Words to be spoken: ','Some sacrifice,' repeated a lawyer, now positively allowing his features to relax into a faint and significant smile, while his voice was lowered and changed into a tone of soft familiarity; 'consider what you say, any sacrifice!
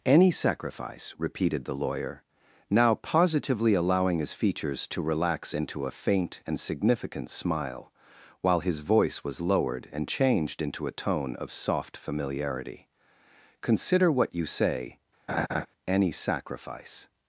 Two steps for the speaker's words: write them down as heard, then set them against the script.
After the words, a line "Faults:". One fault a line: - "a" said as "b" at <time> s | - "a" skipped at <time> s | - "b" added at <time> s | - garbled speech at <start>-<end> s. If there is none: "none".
','Any sacrifice,' repeated the lawyer, now positively allowing his features to relax into a faint and significant smile, while his voice was lowered and changed into a tone of soft familiarity; 'consider what you say, any sacrifice!
Faults:
- "Some" said as "Any" at 0.0 s
- "a" said as "the" at 1.6 s